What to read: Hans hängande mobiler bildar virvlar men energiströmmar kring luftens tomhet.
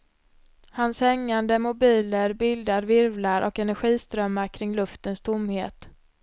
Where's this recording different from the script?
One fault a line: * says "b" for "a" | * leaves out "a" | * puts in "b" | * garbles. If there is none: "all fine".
* says "och" for "men"